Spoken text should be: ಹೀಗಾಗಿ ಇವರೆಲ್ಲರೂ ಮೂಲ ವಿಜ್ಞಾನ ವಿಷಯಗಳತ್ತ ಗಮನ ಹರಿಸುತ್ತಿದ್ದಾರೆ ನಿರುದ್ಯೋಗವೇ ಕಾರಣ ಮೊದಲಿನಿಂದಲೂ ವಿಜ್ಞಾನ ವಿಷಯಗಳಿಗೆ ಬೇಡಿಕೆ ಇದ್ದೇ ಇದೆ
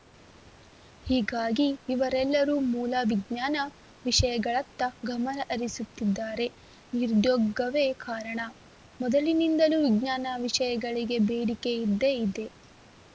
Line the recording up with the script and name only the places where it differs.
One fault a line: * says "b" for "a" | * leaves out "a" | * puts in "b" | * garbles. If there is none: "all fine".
all fine